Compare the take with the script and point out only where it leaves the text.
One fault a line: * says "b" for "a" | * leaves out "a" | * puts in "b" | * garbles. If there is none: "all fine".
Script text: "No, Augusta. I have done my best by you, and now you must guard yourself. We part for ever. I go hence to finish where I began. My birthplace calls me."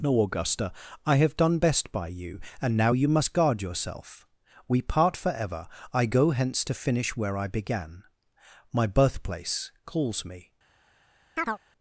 * leaves out "my"